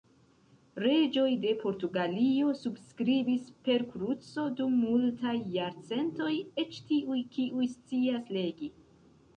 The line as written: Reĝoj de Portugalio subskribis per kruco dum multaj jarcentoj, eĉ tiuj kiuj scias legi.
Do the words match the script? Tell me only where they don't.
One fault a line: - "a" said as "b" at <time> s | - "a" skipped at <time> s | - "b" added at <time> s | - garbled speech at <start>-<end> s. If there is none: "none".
none